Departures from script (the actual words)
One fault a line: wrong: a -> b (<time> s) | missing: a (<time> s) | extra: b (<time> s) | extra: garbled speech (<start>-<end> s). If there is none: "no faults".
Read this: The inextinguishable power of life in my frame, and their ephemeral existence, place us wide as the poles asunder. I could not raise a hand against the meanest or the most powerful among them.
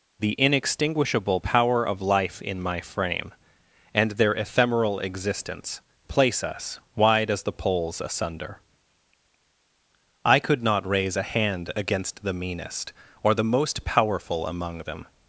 no faults